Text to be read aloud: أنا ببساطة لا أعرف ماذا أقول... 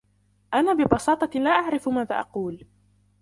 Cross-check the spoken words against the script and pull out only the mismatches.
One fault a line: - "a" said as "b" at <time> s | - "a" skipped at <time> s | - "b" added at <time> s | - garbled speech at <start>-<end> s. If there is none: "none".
none